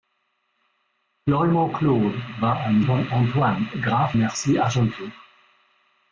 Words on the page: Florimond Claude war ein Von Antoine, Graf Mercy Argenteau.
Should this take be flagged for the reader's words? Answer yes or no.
no